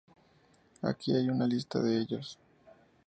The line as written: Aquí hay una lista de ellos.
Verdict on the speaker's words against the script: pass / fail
pass